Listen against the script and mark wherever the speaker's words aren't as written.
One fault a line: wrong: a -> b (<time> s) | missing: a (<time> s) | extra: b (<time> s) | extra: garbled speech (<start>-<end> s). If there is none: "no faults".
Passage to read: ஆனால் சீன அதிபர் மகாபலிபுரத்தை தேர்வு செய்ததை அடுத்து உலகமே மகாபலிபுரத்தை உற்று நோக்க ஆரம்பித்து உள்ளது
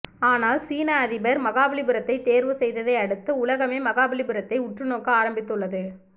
no faults